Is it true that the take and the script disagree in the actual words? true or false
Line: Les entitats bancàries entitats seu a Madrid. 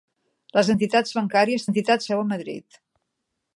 false